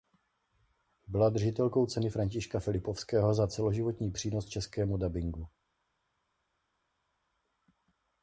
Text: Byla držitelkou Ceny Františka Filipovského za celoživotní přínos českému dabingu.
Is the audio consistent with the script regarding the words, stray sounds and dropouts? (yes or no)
yes